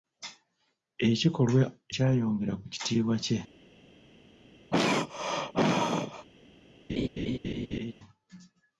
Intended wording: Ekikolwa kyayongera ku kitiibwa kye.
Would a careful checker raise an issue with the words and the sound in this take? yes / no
yes